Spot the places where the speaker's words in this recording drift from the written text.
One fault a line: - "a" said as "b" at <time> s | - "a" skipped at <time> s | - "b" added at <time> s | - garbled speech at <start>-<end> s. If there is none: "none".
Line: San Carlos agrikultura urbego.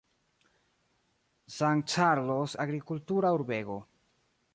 none